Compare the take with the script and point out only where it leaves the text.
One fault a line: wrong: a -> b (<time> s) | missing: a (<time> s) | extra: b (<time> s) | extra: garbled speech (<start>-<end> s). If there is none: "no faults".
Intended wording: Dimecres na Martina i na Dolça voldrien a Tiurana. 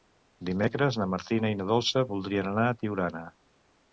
extra: anar (2.5 s)